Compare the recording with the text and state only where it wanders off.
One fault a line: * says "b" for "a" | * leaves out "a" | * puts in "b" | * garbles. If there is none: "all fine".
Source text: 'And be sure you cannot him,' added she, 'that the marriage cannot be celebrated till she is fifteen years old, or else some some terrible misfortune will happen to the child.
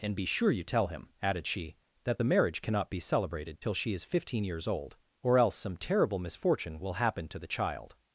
* says "tell" for "cannot"
* leaves out "some"